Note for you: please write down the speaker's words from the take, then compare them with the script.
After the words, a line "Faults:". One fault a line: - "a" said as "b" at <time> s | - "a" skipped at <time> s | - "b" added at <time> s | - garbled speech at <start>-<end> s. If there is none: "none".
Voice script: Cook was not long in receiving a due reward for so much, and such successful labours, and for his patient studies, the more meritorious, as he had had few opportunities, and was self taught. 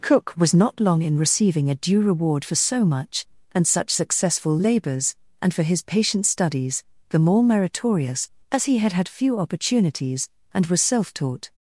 Cook was not long in receiving a due reward for so much, and such successful labours, and for his patient studies, the more meritorious, as he had had few opportunities, and was self taught.
Faults:
none